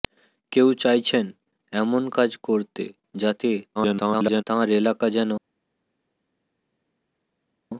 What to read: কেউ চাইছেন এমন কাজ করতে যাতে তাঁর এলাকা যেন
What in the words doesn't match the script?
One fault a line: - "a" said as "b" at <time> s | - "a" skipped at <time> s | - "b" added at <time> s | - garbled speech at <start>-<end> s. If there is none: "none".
- garbled speech at 3.8-4.4 s